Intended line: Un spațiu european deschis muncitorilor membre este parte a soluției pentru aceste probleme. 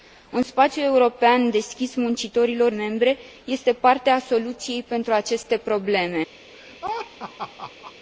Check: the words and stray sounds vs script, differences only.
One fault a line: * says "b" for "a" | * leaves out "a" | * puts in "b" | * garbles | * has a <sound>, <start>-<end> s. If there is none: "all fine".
* has a laugh, 6.5-7.9 s